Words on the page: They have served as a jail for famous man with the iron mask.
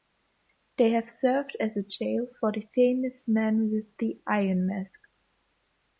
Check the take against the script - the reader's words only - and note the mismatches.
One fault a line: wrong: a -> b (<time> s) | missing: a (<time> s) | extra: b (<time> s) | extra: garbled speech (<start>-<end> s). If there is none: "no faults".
extra: the (2.5 s)